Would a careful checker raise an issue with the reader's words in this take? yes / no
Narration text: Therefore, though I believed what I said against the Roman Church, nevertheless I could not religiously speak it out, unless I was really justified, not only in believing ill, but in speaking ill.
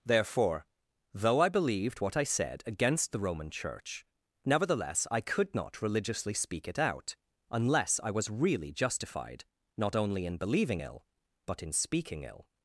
no